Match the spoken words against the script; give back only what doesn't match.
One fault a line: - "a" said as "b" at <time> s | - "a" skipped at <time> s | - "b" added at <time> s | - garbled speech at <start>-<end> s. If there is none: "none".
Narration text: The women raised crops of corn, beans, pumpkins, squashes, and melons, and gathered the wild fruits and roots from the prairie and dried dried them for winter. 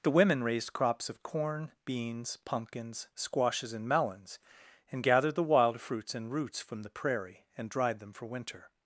- "dried" skipped at 8.0 s